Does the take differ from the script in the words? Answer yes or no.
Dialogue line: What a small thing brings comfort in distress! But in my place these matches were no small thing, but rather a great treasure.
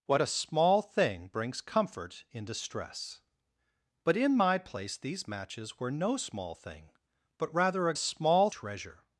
yes